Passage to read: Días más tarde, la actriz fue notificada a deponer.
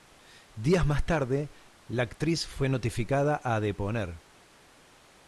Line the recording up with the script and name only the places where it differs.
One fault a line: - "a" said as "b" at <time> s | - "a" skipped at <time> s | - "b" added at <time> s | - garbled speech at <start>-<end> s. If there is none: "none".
none